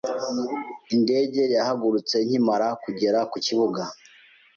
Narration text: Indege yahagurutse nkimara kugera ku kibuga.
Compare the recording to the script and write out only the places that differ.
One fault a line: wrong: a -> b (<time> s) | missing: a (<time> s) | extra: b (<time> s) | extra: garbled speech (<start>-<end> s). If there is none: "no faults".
no faults